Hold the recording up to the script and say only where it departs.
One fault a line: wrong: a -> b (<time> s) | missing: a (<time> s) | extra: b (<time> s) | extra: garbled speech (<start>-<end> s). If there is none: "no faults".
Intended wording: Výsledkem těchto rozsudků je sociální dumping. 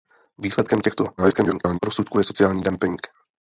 extra: garbled speech (1.2-1.8 s)